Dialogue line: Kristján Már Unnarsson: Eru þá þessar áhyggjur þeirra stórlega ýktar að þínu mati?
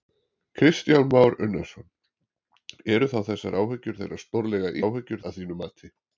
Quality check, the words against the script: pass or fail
fail